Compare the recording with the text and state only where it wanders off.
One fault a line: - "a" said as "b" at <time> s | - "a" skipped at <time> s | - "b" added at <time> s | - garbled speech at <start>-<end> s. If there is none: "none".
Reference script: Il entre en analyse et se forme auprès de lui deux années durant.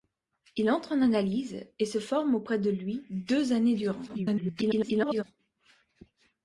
- garbled speech at 4.1-5.2 s